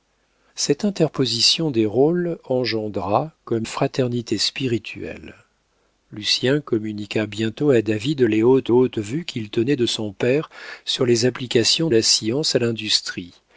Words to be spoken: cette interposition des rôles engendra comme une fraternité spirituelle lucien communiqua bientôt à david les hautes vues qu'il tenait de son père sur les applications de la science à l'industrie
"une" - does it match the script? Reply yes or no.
no